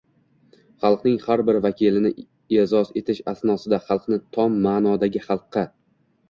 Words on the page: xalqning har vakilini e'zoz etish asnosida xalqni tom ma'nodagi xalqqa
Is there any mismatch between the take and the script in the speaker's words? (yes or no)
yes